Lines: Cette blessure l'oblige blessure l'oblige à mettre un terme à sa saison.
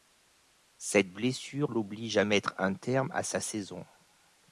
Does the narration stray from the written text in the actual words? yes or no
yes